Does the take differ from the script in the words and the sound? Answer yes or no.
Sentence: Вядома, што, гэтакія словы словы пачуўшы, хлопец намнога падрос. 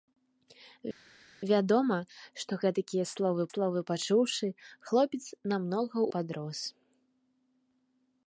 no